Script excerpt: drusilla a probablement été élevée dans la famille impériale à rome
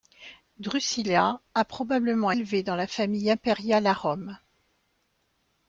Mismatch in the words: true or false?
true